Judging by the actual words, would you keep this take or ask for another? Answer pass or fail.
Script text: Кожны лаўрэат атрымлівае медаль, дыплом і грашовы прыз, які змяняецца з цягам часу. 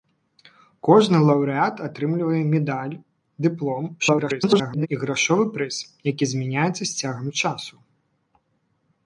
fail